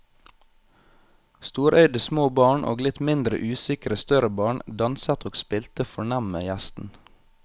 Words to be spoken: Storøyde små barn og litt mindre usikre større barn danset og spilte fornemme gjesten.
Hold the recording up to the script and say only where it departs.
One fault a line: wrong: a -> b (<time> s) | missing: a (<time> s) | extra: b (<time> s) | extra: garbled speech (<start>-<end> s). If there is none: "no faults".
no faults